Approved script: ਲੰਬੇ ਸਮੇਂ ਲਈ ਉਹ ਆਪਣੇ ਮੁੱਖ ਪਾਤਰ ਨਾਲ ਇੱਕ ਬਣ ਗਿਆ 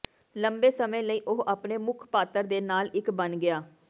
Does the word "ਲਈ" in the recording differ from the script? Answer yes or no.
no